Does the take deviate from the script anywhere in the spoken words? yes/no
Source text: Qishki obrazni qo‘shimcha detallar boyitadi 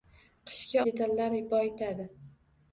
yes